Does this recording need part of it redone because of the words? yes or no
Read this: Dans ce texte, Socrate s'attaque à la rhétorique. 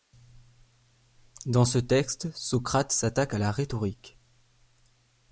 no